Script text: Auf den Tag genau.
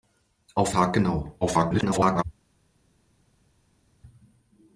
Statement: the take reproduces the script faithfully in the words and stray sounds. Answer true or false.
false